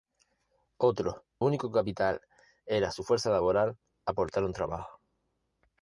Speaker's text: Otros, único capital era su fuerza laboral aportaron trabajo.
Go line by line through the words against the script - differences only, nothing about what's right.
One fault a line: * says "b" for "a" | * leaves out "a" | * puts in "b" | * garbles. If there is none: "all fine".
all fine